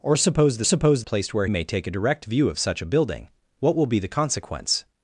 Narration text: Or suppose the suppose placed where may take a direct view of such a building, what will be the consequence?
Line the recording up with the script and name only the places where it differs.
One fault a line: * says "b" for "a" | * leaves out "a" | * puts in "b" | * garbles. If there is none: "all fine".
all fine